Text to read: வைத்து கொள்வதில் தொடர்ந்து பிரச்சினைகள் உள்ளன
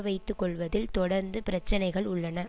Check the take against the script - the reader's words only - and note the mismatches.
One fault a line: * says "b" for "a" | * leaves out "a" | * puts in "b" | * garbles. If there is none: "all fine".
all fine